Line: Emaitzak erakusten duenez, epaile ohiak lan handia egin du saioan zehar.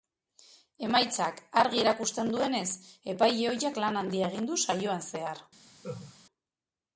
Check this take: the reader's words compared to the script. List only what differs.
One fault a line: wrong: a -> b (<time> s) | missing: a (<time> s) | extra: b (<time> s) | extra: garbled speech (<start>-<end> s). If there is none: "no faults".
extra: argi (1.6 s)